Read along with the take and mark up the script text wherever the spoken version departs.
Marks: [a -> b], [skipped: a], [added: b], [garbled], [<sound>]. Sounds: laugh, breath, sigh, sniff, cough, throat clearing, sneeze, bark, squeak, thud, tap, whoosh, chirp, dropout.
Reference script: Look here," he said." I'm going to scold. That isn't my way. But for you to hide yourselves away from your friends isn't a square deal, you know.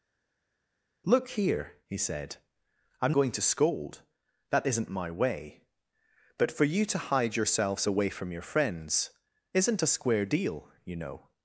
Look here," he said." I'm going to scold. That isn't my way. But for you to hide yourselves away from your friends isn't a square deal, you know.